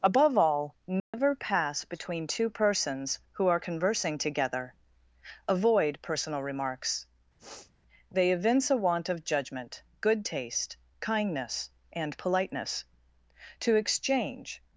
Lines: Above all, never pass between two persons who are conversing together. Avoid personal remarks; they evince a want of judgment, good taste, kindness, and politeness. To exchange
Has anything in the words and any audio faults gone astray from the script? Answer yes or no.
yes